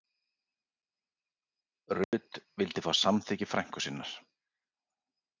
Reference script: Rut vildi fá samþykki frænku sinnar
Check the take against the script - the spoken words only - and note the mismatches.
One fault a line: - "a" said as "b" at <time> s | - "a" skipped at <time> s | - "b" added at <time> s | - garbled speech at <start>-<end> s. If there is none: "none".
none